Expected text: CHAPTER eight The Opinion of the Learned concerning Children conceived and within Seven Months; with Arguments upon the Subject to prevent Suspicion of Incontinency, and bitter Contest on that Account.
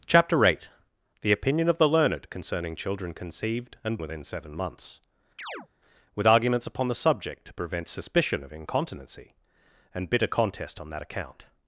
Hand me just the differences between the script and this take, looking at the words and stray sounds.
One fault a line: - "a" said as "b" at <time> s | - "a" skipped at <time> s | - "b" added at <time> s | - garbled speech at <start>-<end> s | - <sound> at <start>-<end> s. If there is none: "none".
- chirp at 5.4-5.7 s